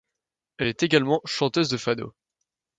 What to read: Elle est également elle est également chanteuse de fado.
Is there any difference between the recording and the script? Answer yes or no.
yes